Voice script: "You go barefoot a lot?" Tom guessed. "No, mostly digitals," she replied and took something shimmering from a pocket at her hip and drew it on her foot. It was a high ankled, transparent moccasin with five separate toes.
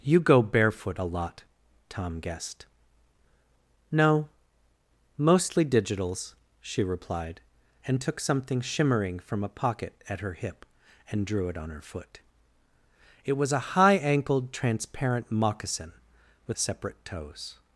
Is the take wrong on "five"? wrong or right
wrong